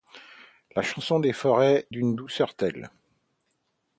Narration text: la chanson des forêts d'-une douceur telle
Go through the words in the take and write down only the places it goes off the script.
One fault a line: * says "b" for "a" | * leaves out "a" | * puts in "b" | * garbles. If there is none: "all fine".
all fine